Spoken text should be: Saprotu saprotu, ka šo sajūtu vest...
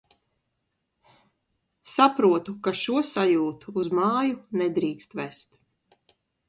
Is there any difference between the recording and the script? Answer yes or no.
yes